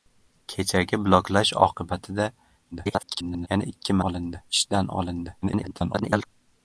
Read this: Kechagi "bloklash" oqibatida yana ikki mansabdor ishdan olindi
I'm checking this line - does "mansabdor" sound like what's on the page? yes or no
no